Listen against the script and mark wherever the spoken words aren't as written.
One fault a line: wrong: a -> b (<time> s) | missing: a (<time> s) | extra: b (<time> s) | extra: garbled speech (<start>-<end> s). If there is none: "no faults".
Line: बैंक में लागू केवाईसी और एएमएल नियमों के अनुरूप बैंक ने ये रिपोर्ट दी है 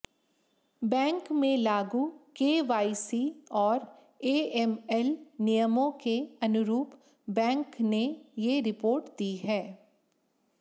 no faults